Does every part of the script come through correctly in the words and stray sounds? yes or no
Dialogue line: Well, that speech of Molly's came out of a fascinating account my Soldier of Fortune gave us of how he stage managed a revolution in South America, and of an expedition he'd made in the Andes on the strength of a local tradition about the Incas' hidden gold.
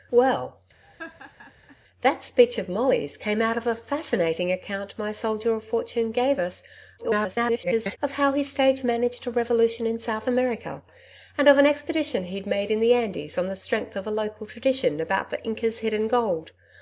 no